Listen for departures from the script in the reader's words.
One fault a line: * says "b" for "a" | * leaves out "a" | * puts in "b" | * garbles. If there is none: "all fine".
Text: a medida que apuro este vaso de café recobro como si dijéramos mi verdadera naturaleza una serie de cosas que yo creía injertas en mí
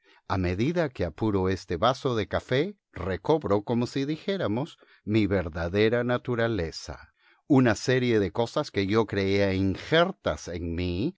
all fine